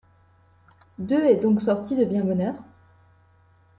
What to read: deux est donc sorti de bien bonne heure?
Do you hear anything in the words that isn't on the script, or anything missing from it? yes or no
no